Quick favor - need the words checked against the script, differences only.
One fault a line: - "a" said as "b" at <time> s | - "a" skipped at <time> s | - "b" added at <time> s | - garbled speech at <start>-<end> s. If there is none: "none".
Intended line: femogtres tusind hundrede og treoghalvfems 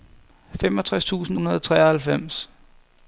none